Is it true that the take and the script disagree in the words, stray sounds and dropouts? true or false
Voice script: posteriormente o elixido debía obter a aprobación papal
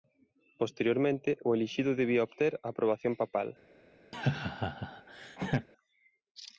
true